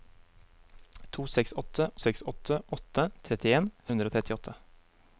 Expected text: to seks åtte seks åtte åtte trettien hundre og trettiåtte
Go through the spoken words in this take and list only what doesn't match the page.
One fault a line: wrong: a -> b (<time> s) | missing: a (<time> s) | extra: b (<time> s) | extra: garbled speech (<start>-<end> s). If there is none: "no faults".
no faults